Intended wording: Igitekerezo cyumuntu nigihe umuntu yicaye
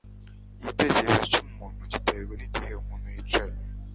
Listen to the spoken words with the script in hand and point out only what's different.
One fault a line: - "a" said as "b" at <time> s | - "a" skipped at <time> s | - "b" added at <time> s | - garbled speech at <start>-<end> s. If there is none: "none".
- "giterwa" added at 1.9 s